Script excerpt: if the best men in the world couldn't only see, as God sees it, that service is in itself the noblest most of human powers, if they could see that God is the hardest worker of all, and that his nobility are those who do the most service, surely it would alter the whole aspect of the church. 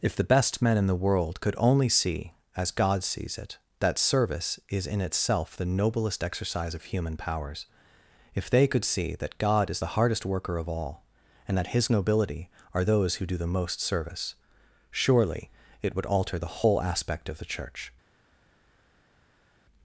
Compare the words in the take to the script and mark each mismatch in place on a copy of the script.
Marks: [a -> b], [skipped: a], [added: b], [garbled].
if the best men in the world [couldn't -> could] only see, as God sees it, that service is in itself the noblest [most -> exercise] of human powers, if they could see that God is the hardest worker of all, and that his nobility are those who do the most service, surely it would alter the whole aspect of the church.